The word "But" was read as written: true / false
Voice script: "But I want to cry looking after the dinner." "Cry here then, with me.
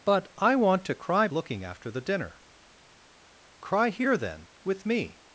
true